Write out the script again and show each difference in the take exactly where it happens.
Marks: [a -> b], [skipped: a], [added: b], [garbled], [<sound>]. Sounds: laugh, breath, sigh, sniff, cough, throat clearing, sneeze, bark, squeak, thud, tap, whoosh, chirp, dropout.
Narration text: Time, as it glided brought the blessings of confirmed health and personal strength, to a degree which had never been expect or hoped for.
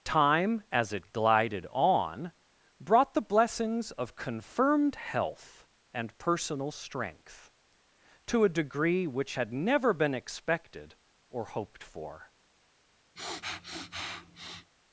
Time, as it glided [added: on] brought the blessings of confirmed health and personal strength, to a degree which had never been [expect -> expected] or hoped for. [sniff]